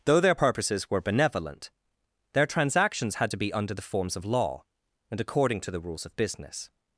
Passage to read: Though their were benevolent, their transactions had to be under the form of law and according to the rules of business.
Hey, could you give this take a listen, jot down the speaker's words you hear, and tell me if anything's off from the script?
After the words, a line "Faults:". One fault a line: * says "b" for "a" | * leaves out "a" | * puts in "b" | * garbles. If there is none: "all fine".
Though their purposes were benevolent, their transactions had to be under the forms of law and according to the rules of business.
Faults:
* puts in "purposes"
* says "forms" for "form"